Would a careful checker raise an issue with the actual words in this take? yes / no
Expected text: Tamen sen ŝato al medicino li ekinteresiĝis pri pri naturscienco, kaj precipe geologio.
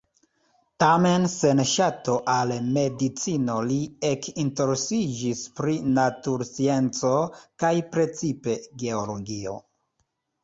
yes